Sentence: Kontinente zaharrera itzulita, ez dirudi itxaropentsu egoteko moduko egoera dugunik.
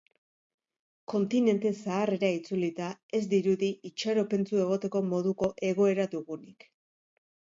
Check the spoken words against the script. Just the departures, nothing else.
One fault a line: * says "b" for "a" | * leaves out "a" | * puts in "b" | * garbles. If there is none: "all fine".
all fine